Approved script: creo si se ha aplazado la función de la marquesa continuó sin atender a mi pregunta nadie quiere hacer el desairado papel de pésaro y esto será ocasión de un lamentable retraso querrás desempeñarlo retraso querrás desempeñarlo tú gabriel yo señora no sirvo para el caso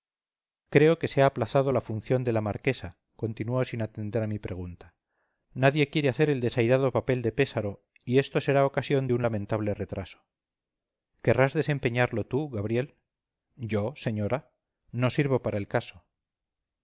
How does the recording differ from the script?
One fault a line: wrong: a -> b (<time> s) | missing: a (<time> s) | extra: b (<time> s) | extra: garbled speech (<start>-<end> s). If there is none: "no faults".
wrong: si -> que (1.0 s)
missing: retraso querrás desempeñarlo (12.3 s)